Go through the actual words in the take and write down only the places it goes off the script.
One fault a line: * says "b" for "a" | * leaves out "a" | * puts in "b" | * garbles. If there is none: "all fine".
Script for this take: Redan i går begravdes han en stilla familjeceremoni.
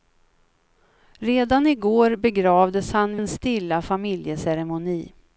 all fine